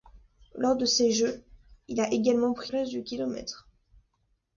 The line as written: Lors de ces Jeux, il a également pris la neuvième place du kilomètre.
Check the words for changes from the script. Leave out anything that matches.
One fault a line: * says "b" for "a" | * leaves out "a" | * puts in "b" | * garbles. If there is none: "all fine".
* leaves out "la neuvième"